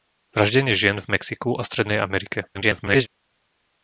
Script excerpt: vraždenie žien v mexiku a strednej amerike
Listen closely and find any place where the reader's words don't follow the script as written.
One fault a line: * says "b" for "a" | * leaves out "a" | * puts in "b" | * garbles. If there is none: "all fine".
* garbles